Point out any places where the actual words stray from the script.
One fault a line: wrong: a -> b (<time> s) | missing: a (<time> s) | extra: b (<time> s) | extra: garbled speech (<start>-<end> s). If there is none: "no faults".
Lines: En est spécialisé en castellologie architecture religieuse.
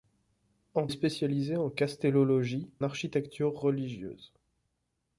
no faults